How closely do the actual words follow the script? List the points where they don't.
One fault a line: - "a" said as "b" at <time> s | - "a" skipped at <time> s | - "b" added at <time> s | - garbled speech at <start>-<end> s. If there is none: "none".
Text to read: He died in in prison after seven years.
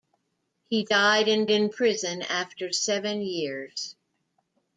none